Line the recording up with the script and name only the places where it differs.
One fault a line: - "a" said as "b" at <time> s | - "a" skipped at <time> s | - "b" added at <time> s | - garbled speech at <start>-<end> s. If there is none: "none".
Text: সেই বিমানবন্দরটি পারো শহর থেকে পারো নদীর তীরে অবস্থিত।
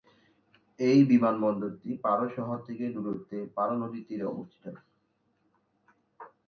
- "সেই" said as "এই" at 0.8 s
- "দূরত্বে" added at 3.0 s